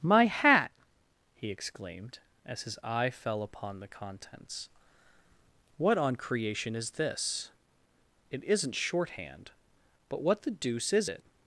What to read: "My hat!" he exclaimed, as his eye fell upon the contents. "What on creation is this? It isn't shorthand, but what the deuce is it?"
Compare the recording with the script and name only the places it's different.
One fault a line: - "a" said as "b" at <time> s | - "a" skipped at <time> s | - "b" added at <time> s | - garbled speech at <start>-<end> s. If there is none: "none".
none